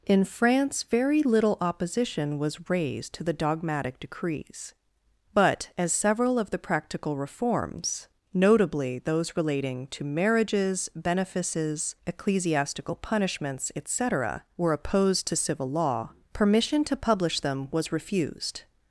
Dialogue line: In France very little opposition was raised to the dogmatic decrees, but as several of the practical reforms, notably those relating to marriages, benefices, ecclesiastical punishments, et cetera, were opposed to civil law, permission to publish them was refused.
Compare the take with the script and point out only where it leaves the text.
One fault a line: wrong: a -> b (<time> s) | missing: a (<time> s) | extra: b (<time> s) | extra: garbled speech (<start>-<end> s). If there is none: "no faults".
no faults